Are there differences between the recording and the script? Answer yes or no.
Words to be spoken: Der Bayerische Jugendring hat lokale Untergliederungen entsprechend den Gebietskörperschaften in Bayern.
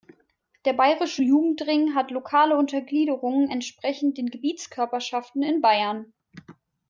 no